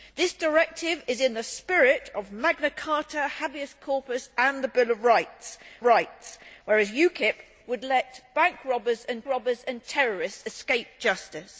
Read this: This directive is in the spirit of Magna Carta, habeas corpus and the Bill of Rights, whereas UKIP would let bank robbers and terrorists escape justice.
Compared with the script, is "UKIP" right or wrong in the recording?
right